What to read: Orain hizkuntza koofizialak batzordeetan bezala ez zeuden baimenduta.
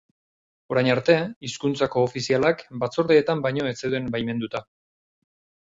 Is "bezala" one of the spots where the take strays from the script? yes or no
yes